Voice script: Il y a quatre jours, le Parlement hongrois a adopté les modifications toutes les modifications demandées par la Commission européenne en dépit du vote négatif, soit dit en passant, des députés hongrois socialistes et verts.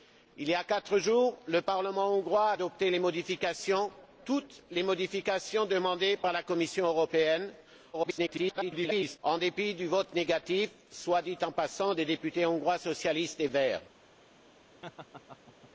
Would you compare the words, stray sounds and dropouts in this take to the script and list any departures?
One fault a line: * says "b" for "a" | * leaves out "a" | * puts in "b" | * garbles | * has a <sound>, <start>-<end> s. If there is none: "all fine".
* garbles
* has a laugh, 14.8-15.7 s